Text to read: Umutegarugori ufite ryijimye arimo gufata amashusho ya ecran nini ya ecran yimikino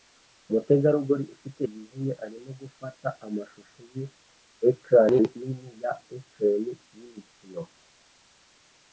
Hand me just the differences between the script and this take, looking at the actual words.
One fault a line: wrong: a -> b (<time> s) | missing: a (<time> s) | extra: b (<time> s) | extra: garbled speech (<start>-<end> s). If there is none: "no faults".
no faults